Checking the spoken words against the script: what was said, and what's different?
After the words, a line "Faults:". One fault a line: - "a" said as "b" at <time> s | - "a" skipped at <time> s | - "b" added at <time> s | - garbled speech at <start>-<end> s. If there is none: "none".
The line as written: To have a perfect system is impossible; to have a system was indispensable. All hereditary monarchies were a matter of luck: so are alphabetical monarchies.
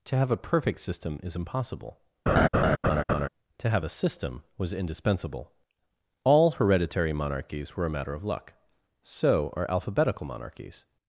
To have a perfect system is impossible; to have a system was indispensable. All hereditary monarchies were a matter of luck: so are alphabetical monarchies.
Faults:
none